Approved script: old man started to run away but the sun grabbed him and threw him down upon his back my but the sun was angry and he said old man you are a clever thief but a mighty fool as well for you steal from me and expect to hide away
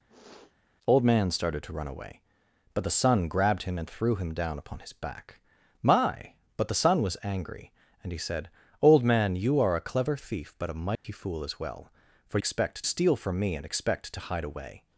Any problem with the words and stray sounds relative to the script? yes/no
yes